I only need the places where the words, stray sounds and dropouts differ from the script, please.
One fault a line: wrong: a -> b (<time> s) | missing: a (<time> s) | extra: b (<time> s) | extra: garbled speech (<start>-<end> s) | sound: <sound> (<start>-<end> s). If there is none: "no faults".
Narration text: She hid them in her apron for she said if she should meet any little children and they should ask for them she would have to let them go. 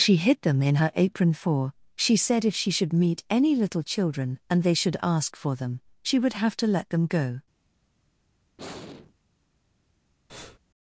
sound: sigh (8.6-9.1 s)
sound: breath (10.3-10.6 s)